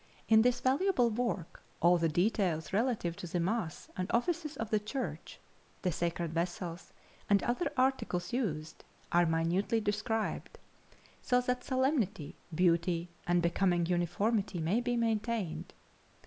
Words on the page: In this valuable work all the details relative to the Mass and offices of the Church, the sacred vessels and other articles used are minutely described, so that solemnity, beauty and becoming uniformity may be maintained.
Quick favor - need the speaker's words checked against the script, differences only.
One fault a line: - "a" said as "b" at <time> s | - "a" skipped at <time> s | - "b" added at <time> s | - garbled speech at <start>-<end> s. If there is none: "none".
none